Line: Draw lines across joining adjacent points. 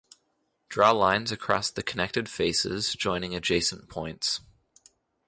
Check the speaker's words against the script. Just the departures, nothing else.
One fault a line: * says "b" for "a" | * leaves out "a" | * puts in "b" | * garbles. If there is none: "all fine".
* puts in "the connected faces"